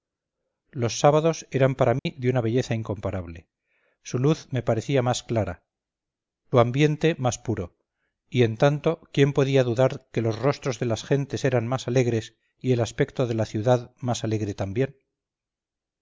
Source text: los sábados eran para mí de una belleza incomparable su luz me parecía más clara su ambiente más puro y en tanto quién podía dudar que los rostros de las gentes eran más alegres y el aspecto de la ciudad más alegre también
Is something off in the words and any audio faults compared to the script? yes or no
yes